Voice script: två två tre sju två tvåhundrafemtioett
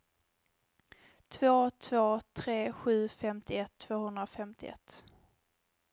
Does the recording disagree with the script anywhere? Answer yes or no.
yes